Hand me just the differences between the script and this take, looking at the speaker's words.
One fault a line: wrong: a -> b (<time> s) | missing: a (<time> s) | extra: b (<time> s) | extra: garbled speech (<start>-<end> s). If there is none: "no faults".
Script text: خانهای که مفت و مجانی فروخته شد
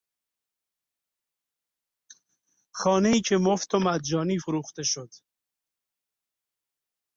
no faults